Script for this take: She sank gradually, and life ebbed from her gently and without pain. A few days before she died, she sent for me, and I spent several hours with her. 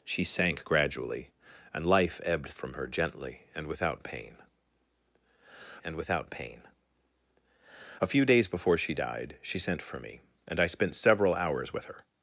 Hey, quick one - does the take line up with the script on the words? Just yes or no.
no